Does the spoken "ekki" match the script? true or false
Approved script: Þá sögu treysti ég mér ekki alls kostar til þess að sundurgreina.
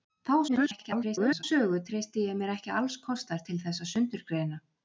true